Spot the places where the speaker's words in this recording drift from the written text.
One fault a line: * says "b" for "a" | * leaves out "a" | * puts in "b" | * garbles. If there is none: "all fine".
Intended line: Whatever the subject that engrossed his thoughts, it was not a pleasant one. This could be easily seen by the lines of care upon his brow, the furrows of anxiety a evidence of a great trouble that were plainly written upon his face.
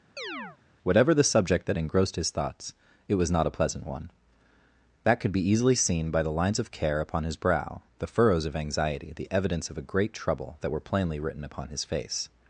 * says "That" for "This"
* says "the" for "a"